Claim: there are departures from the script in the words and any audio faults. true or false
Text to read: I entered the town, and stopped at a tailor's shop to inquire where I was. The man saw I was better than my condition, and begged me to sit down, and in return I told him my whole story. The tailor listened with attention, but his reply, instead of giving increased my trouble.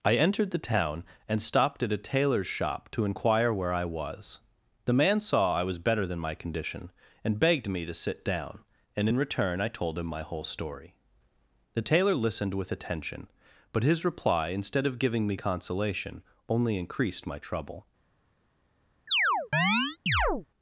true